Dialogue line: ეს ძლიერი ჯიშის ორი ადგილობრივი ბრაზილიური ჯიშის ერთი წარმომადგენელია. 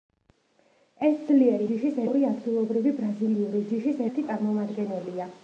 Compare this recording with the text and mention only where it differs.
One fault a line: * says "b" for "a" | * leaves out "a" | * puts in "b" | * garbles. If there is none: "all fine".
all fine